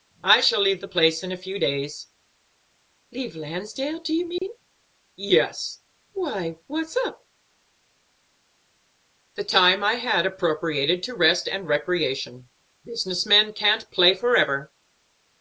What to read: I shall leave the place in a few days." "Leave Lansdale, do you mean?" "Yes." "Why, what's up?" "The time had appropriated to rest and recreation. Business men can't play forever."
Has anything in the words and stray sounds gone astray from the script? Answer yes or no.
yes